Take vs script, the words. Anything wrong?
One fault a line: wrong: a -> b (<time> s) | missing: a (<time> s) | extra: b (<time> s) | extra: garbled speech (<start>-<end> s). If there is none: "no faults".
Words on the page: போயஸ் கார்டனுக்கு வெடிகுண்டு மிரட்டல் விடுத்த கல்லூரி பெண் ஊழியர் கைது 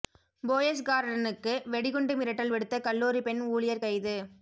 no faults